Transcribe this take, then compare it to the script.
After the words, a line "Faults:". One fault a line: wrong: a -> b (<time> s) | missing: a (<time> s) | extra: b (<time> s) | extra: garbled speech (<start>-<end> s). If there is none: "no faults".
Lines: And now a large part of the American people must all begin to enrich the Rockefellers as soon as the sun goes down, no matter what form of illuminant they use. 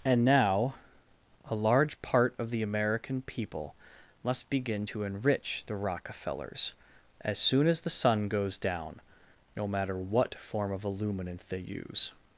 And now a large part of the American people must begin to enrich the Rockefellers as soon as the sun goes down, no matter what form of illuminant they use.
Faults:
missing: all (4.5 s)